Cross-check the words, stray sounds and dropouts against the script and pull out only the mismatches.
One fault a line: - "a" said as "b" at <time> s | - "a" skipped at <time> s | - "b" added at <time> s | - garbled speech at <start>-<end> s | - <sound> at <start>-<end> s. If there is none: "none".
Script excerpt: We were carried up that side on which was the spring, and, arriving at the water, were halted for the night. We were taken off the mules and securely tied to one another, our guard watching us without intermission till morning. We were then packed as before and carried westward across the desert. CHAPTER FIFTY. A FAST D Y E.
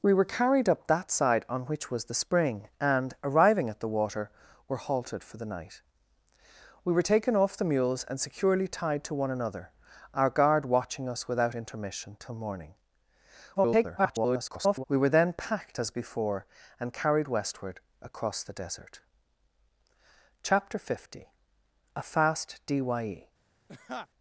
- garbled speech at 13.5-14.8 s
- laugh at 23.7-24.1 s